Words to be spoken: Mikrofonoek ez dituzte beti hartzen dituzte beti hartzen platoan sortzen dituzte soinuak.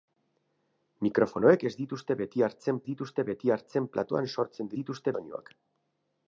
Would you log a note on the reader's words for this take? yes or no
no